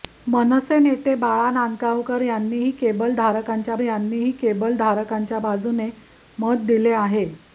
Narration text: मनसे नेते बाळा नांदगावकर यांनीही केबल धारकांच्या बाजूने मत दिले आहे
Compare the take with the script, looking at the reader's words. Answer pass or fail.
fail